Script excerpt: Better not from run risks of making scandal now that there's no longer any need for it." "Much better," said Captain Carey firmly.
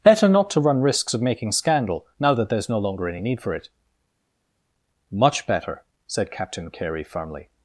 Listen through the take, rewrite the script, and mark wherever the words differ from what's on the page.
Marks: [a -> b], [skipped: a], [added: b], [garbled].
Better not [from -> to] run risks of making scandal now that there's no longer any need for it." "Much better," said Captain Carey firmly.